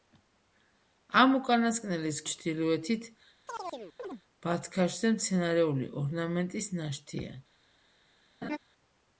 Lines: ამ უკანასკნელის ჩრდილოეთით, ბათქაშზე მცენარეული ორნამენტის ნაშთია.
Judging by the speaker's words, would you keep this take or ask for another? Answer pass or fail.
pass